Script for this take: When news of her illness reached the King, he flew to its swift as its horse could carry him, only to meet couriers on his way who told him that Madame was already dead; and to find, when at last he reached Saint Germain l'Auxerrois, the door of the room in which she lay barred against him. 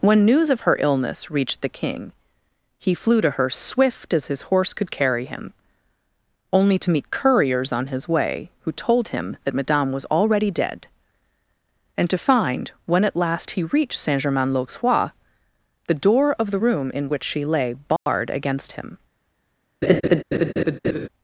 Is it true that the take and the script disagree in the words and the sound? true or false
true